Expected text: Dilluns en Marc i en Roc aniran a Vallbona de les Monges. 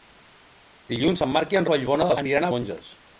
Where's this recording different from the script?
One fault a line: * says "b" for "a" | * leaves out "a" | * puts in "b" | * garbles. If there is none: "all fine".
* leaves out "Roc aniran"
* says "aniran" for "les"